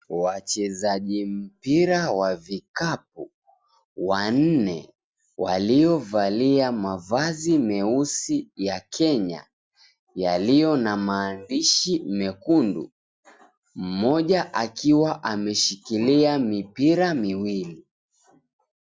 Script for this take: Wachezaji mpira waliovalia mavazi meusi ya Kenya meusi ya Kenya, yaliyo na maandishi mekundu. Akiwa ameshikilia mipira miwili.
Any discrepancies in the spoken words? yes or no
yes